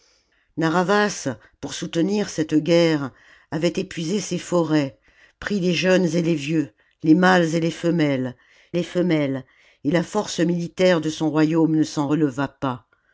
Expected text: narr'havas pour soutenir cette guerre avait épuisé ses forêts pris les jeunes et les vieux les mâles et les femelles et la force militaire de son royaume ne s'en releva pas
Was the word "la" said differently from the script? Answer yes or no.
no